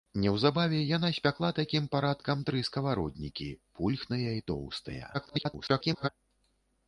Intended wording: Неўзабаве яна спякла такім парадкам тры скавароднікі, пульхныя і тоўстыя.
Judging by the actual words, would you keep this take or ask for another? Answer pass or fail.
fail